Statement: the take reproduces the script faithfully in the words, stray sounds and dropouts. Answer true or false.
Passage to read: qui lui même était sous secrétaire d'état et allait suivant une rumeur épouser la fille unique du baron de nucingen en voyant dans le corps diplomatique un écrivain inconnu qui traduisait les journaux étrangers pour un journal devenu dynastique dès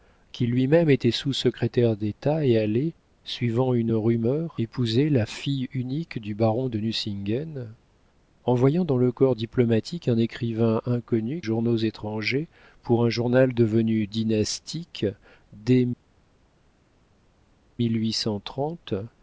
false